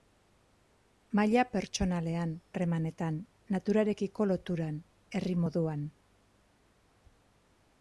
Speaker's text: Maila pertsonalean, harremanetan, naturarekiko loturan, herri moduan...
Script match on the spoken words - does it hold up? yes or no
yes